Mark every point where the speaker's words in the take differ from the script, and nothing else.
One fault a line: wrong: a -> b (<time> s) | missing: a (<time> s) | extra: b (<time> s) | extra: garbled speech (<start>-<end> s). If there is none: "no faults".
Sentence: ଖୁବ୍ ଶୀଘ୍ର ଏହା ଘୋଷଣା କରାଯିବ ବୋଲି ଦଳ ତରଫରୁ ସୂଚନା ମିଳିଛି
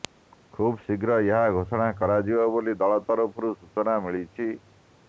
no faults